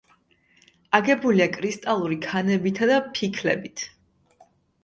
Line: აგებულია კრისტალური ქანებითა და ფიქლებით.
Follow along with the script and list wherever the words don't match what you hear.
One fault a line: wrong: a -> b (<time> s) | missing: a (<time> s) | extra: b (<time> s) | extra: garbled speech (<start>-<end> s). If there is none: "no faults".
no faults